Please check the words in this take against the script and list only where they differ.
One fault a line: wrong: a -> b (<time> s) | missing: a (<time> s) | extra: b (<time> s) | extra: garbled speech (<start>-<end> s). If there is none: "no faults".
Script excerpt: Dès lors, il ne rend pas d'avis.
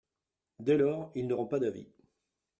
no faults